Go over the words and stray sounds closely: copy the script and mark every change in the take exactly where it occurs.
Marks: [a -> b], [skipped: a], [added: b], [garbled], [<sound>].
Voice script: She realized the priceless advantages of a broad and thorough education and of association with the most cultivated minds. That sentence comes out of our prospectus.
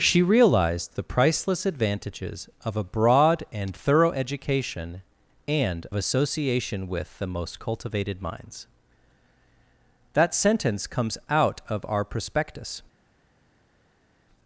She realized the priceless advantages of a broad and thorough education and [skipped: of] association with the most cultivated minds. That sentence comes out of our prospectus.